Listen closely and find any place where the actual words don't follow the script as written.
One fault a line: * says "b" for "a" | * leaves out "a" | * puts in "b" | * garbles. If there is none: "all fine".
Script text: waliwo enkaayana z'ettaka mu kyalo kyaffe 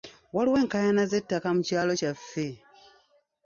all fine